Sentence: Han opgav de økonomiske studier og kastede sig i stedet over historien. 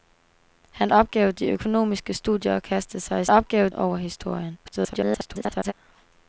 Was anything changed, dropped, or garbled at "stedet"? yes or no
yes